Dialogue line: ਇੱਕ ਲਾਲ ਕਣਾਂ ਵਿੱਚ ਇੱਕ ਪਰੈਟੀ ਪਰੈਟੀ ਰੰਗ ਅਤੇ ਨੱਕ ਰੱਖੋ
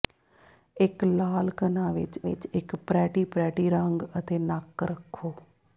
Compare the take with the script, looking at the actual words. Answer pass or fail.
fail